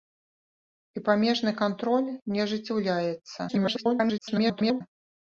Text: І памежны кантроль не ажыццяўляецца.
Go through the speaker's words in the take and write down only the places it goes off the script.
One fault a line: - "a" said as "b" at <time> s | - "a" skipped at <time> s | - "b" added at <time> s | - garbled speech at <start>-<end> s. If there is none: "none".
- garbled speech at 3.5-4.8 s